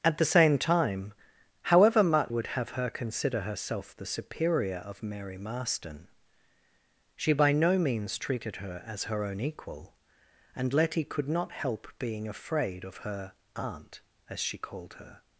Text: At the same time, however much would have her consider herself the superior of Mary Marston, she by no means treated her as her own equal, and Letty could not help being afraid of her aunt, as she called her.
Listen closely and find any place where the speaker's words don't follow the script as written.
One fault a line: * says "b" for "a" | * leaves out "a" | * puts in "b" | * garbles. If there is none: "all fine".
all fine